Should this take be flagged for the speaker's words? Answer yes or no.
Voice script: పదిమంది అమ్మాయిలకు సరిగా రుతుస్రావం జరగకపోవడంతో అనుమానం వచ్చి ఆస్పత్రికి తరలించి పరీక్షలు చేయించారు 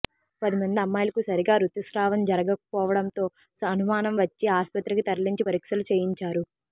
no